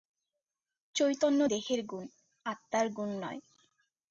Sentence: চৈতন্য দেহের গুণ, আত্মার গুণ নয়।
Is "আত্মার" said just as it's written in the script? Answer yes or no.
yes